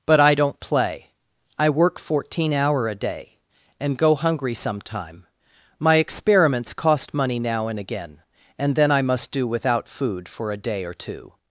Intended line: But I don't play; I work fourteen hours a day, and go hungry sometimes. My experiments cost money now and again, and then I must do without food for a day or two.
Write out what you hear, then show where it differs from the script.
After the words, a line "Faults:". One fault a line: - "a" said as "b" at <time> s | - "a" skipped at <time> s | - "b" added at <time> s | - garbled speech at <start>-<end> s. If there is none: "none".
But I don't play; I work fourteen hour a day, and go hungry sometime. My experiments cost money now and again, and then I must do without food for a day or two.
Faults:
- "hours" said as "hour" at 2.5 s
- "sometimes" said as "sometime" at 4.5 s